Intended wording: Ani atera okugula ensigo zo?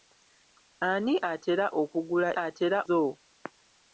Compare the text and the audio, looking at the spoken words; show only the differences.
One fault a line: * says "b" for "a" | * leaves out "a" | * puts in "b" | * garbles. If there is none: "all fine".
* says "atera" for "ensigo"